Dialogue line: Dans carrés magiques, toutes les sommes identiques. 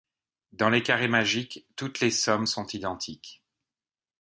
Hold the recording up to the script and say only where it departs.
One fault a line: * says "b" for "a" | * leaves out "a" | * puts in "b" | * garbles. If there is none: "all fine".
* puts in "les"
* puts in "sont"